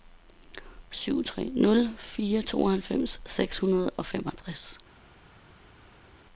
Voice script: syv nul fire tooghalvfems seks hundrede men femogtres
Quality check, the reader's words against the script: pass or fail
fail